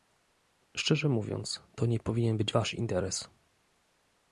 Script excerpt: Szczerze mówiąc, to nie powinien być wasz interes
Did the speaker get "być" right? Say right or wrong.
right